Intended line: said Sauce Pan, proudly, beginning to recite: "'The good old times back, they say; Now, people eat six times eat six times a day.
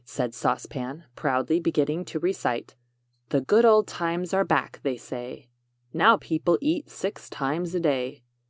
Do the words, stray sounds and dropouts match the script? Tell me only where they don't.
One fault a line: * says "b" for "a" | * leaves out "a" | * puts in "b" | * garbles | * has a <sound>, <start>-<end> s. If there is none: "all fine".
* puts in "are"
* leaves out "eat six times"